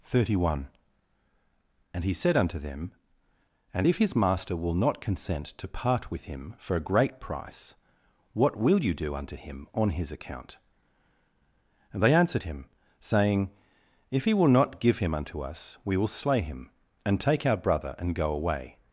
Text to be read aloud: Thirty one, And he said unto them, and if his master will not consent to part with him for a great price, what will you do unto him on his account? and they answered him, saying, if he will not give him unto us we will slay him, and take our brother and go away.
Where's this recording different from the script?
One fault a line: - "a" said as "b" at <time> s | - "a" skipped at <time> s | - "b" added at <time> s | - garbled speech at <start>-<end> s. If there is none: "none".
none